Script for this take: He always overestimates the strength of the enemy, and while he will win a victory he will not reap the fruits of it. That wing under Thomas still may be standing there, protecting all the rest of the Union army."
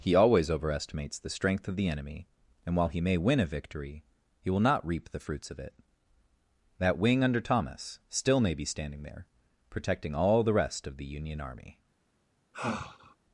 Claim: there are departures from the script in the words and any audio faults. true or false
true